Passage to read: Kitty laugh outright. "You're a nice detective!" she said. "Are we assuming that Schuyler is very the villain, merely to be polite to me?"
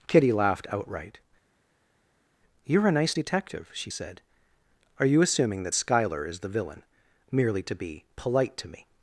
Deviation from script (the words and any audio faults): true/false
true